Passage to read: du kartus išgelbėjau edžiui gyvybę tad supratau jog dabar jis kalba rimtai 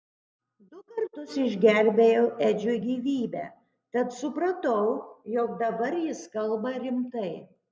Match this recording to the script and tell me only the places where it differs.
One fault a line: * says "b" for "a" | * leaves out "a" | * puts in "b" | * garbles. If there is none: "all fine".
all fine